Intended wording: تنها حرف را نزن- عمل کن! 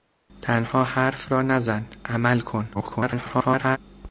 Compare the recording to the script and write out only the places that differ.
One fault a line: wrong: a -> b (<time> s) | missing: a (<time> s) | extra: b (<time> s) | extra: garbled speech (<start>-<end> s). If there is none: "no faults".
extra: garbled speech (2.7-3.8 s)